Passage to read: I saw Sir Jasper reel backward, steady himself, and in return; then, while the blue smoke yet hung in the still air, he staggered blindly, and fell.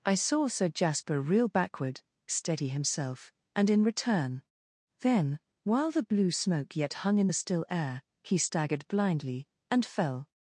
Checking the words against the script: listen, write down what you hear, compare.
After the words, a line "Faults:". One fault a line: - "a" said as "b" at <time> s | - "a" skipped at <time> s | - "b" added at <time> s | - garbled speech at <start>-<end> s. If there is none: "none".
I saw Sir Jasper reel backward, steady himself, and in return; then, while the blue smoke yet hung in the still air, he staggered blindly, and fell.
Faults:
none